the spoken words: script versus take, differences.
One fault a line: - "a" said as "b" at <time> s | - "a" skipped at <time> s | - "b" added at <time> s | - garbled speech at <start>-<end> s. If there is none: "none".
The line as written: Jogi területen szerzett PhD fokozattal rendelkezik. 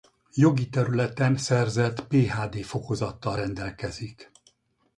none